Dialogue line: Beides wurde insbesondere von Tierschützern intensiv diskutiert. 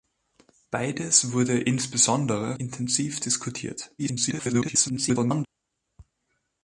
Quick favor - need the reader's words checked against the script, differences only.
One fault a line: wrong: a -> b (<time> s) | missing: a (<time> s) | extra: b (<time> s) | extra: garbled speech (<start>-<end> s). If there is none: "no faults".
missing: von Tierschützern (2.6 s)
extra: garbled speech (4.0-5.5 s)